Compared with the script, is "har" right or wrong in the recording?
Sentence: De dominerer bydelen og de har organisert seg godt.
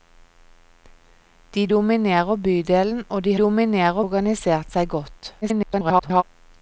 wrong